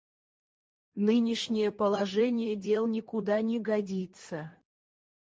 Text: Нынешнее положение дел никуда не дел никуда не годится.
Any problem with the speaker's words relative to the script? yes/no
yes